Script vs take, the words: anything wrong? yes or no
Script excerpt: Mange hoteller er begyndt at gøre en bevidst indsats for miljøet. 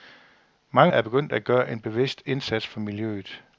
yes